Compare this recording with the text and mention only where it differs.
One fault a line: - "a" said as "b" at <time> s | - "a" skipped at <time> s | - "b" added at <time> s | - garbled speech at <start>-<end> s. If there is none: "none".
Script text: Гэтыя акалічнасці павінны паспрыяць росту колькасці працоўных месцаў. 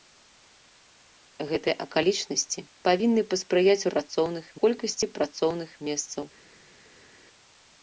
- "росту" said as "працоўных" at 3.9 s